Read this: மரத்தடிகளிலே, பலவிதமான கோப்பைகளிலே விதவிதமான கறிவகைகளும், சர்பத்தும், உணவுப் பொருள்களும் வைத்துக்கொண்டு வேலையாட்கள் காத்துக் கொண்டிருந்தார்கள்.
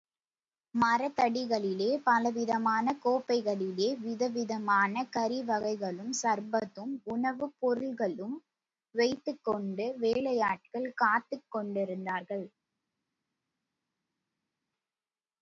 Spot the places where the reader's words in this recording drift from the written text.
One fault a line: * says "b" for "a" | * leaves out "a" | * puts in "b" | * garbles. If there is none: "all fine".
all fine